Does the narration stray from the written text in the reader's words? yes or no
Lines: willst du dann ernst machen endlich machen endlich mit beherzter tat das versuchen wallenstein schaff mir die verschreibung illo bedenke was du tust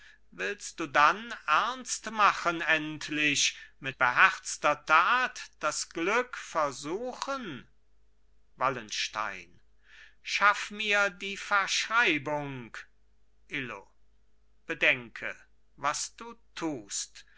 yes